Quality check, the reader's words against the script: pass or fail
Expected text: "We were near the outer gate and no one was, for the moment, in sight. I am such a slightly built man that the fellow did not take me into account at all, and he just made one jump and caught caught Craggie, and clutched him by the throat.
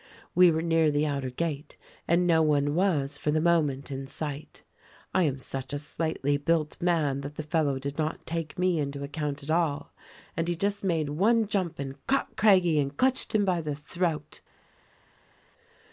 fail